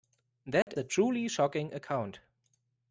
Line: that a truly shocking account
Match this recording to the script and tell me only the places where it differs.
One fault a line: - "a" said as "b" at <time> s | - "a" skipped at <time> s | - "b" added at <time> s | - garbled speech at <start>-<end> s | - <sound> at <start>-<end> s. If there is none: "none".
- dropout at 0.6-0.7 s